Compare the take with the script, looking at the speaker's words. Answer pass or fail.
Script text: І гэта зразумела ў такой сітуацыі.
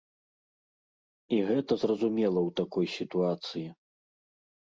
pass